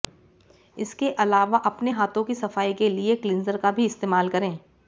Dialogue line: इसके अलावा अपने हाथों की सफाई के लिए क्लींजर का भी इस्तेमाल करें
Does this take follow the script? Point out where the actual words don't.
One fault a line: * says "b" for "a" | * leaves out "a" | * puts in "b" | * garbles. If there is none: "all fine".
all fine